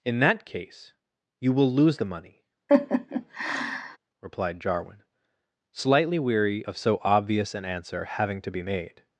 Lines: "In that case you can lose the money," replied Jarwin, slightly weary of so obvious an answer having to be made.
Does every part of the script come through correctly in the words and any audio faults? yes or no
no